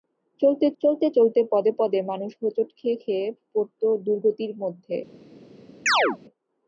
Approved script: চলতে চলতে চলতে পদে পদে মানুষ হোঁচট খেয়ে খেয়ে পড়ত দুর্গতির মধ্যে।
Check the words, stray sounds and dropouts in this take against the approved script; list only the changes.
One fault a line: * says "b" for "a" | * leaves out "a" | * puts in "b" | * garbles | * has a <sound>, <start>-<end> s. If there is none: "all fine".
* has a chirp, 5.9-6.2 s